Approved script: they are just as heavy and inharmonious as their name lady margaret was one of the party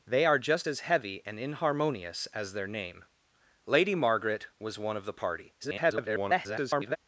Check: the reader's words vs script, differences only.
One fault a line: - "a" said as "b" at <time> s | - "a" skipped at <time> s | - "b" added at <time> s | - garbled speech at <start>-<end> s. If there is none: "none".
- garbled speech at 5.6-7.0 s